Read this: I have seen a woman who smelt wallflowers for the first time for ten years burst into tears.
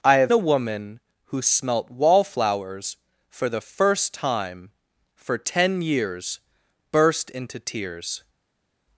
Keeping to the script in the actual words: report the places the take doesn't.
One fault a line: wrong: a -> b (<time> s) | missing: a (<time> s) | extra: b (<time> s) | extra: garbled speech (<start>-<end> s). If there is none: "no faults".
missing: seen (0.3 s)